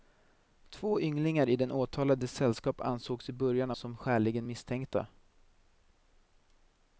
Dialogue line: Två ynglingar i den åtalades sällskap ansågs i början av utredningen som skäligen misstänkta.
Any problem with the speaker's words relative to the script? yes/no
yes